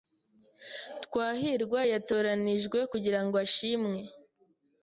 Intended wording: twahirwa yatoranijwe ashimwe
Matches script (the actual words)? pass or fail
fail